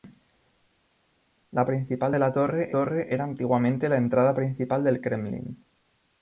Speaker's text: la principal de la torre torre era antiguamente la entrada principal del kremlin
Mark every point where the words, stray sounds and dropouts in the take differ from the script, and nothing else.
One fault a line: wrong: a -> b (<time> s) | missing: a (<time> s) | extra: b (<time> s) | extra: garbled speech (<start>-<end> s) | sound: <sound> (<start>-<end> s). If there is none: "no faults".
no faults